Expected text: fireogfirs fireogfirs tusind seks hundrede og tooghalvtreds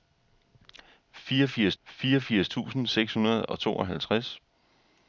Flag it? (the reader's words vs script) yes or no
no